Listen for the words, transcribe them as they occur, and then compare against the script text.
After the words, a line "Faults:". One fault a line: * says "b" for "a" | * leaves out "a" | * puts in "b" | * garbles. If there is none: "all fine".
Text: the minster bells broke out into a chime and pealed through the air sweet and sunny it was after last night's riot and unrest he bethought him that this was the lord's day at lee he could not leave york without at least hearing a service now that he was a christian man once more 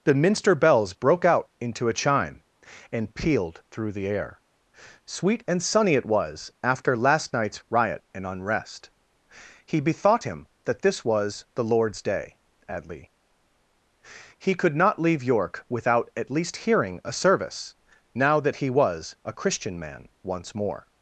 the minster bells broke out into a chime and pealed through the air sweet and sunny it was after last night's riot and unrest he bethought him that this was the lord's day at lee he could not leave york without at least hearing a service now that he was a christian man once more
Faults:
all fine